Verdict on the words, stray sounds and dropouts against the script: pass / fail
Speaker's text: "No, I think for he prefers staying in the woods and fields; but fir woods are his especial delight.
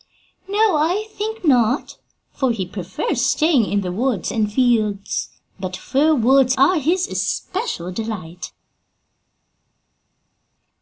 fail